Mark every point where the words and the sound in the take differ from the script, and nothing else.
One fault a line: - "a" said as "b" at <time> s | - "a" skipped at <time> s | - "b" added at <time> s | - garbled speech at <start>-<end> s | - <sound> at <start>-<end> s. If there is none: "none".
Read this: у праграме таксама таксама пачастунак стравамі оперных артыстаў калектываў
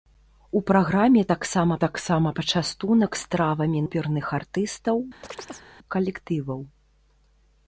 - chirp at 5.2-5.7 s